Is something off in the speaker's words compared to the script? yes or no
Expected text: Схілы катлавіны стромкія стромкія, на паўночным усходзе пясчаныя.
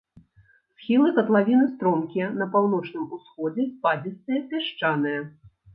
yes